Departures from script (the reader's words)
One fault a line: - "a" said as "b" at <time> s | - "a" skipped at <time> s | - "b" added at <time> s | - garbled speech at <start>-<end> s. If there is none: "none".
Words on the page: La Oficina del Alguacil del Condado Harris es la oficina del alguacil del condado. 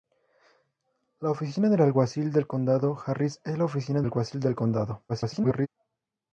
- "del" skipped at 4.0 s
- garbled speech at 5.1-5.7 s